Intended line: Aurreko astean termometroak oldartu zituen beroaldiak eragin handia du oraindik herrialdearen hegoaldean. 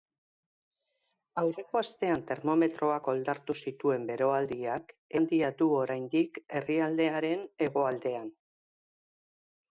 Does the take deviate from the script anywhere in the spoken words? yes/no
yes